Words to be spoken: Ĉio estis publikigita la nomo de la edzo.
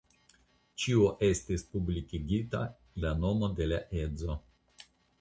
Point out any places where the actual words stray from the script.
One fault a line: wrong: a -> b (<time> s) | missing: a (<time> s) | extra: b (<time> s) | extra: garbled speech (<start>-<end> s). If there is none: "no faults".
no faults